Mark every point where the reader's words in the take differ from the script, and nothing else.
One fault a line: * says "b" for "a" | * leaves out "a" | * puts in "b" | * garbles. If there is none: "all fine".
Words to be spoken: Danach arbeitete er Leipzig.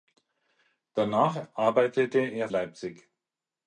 all fine